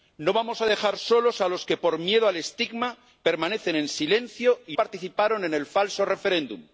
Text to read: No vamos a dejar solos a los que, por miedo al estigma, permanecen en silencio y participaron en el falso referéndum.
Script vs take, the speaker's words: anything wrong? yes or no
no